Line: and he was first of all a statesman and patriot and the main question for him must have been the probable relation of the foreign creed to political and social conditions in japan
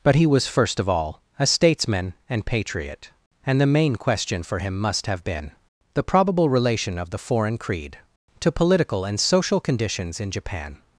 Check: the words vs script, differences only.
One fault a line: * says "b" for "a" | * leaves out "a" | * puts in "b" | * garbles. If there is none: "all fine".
* says "but" for "and"